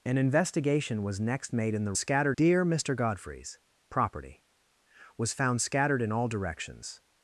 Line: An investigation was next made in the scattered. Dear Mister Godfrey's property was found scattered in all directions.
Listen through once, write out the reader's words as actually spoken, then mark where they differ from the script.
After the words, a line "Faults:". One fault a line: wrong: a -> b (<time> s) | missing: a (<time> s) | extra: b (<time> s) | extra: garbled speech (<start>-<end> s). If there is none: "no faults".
An investigation was next made in the scattered. Dear Mister Godfrey's property was found scattered in all directions.
Faults:
no faults